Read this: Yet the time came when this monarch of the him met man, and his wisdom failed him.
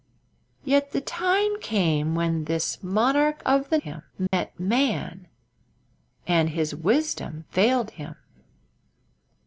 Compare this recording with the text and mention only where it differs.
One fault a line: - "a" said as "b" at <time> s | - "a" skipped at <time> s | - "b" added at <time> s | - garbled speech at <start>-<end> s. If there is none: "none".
none